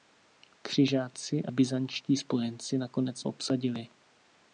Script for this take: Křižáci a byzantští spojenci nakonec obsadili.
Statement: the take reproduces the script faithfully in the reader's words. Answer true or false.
true